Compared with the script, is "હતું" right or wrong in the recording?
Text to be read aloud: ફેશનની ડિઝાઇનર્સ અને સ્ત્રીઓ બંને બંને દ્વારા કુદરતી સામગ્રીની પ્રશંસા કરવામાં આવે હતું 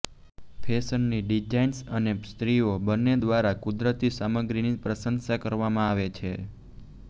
wrong